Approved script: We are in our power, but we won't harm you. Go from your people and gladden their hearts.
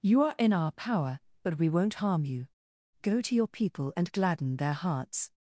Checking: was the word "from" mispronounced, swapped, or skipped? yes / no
yes